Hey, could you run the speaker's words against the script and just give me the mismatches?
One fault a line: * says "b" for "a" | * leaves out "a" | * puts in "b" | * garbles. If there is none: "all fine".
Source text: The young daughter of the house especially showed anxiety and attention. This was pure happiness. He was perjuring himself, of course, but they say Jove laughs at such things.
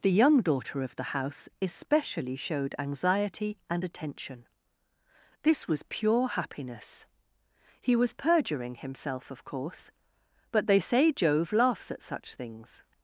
all fine